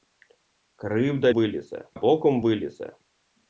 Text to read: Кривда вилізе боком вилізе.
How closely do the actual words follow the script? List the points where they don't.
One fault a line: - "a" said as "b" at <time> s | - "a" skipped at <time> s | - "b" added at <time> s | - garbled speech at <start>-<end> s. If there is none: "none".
none